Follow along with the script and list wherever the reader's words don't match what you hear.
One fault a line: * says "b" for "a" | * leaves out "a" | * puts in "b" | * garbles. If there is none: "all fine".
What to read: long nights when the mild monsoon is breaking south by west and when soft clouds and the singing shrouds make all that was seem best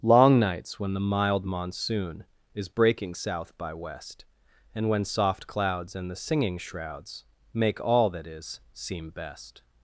* says "is" for "was"